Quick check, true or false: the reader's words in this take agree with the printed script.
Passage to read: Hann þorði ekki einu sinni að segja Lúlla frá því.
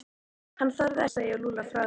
false